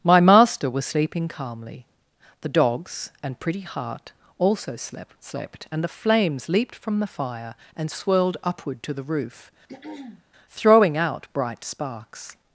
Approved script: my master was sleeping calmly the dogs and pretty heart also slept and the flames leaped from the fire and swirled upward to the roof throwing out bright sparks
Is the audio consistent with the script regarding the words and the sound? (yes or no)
no